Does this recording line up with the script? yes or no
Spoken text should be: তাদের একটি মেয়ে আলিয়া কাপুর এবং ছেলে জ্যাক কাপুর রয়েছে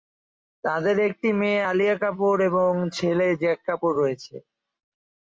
yes